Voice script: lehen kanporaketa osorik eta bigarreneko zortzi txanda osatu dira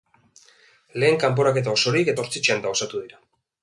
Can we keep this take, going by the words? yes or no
no